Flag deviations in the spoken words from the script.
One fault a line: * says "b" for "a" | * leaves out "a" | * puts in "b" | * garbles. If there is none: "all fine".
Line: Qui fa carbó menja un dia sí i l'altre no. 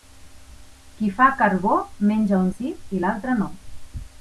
* leaves out "dia"